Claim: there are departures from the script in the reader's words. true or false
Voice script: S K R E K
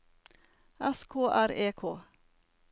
false